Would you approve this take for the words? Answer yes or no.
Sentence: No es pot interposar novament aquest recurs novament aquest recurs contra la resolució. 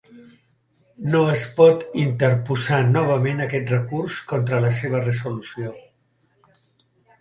no